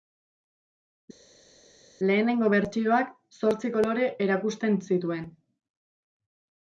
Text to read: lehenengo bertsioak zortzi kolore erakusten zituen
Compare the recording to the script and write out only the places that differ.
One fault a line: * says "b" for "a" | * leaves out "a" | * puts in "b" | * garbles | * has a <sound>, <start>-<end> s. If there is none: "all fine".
all fine